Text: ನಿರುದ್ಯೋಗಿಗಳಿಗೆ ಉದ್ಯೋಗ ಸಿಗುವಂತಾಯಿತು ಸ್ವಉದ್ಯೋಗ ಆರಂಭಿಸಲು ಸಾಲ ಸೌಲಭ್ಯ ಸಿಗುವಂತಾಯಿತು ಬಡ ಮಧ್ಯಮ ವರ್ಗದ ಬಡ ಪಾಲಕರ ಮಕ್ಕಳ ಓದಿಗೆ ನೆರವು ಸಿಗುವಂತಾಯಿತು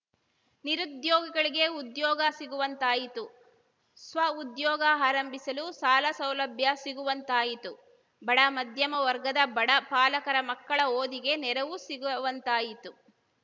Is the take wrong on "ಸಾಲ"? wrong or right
right